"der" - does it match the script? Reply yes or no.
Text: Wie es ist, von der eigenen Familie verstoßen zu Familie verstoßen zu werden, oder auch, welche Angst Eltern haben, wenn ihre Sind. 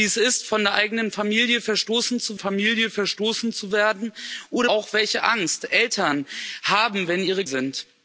yes